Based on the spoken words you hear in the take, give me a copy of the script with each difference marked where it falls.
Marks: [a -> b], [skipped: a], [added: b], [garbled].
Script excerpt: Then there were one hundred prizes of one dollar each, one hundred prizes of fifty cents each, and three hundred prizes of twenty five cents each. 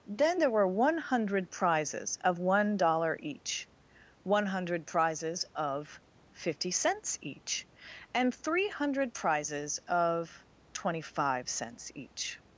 Then there were one hundred prizes of one dollar each, one hundred prizes of fifty cents each, and three hundred prizes of twenty five cents each.